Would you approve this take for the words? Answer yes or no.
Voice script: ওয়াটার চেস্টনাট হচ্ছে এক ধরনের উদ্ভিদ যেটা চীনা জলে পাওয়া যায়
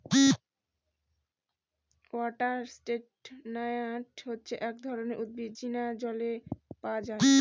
no